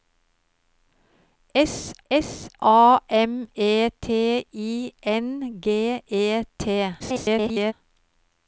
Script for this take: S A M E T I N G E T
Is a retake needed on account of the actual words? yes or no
yes